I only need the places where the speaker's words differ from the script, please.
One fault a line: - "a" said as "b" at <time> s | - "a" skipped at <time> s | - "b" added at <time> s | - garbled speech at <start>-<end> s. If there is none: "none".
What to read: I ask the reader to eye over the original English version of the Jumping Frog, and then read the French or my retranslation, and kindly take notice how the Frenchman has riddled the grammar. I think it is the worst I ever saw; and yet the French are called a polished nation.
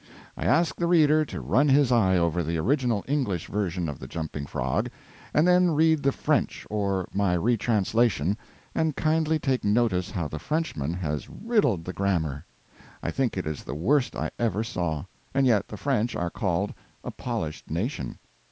- "run his" added at 1.4 s